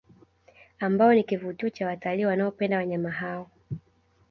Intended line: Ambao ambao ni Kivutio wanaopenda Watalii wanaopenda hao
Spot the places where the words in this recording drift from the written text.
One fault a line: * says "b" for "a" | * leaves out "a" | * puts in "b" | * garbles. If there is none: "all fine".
* leaves out "ambao"
* says "cha" for "wanaopenda"
* puts in "wanyama"